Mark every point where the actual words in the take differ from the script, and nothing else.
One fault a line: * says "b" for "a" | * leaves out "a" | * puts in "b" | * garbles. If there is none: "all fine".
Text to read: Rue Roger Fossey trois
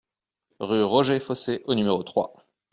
* puts in "au numéro"